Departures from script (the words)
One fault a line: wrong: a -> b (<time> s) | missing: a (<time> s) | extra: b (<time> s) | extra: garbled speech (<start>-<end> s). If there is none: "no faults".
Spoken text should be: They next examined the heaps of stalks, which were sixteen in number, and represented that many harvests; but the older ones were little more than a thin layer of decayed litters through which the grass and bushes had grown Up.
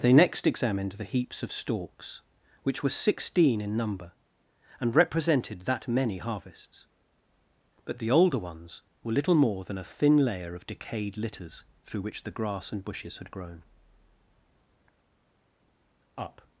no faults